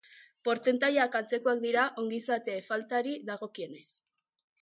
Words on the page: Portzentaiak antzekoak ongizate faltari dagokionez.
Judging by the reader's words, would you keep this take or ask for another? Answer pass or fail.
fail